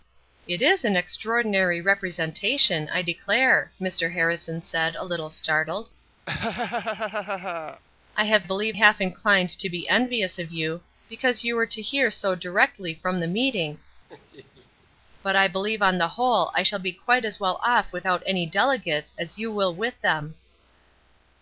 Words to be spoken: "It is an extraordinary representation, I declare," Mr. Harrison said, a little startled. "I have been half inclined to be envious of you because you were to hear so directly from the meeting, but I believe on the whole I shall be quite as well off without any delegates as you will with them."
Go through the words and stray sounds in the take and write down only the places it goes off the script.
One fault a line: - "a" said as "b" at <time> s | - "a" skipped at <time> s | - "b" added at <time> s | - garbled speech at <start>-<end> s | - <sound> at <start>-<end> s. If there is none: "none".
- laugh at 6.3-7.8 s
- "been" said as "believe" at 8.4 s
- laugh at 14.1-14.9 s